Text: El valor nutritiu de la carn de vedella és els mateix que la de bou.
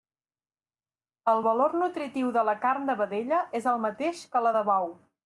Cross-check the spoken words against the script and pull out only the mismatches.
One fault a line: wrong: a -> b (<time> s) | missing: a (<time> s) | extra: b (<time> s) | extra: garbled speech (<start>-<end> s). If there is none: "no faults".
wrong: els -> el (3.7 s)